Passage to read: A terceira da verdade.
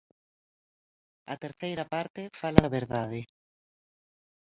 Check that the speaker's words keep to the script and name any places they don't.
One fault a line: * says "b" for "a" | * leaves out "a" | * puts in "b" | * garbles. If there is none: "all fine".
* puts in "parte fala"